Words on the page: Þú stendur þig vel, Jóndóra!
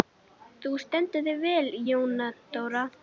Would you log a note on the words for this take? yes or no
no